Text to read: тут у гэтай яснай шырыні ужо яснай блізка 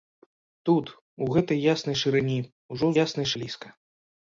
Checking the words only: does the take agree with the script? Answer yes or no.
yes